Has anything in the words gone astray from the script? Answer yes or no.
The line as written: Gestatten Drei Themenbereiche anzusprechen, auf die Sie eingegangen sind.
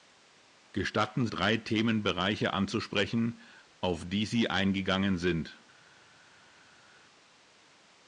no